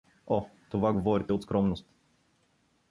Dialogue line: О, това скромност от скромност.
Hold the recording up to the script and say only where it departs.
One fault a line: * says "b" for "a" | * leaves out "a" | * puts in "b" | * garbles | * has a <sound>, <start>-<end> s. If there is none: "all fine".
* says "говорите" for "скромност"